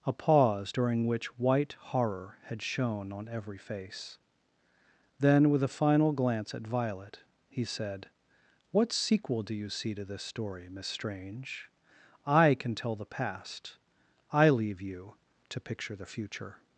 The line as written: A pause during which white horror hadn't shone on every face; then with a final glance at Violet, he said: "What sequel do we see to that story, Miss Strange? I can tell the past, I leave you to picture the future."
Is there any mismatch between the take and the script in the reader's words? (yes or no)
yes